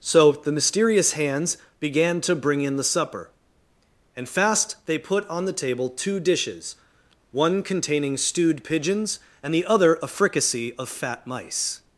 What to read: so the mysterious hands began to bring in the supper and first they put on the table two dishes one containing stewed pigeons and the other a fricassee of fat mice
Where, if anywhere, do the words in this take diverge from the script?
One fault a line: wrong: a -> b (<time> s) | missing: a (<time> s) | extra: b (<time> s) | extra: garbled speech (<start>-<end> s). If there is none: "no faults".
wrong: first -> fast (4.3 s)